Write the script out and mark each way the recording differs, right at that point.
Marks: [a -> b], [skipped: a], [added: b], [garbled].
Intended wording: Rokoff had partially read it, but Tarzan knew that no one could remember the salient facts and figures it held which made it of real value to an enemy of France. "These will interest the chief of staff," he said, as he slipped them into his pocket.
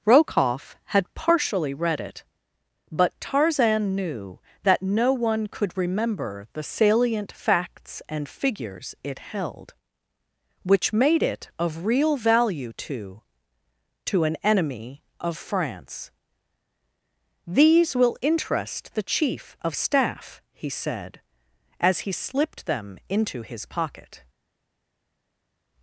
Rokoff had partially read it, but Tarzan knew that no one could remember the salient facts and figures it held which made it of real value to [added: to] an enemy of France. "These will interest the chief of staff," he said, as he slipped them into his pocket.